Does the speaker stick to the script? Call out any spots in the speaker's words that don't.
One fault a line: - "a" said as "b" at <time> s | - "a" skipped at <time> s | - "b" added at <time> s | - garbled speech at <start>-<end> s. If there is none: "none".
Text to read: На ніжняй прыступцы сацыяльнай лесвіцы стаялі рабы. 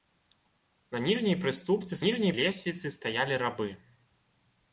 - "сацыяльнай" said as "ніжняй" at 2.0 s